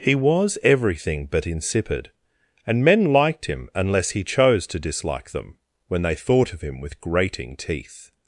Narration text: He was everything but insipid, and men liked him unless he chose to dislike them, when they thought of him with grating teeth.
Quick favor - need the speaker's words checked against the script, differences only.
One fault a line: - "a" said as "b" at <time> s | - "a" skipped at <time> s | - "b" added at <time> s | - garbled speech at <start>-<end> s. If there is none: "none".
none